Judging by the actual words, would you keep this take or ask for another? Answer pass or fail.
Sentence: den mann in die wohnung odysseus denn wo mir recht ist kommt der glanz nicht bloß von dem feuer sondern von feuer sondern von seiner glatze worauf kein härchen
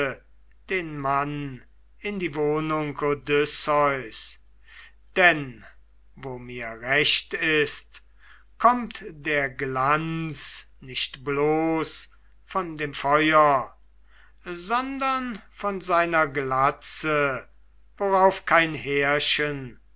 fail